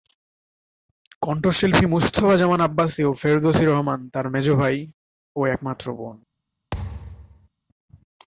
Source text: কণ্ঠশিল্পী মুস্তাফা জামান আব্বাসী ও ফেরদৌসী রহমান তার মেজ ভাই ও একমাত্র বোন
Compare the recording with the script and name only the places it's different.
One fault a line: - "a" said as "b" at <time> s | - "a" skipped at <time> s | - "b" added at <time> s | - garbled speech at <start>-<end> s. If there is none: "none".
none